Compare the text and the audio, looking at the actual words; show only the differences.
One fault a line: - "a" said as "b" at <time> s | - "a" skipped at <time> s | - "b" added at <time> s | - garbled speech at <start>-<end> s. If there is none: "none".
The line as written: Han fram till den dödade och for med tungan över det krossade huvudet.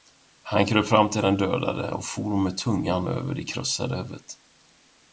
- "kröp" added at 0.7 s